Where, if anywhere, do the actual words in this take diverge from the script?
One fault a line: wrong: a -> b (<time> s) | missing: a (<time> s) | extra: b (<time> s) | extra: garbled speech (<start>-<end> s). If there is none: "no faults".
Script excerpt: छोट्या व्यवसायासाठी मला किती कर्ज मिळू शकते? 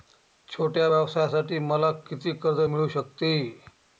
no faults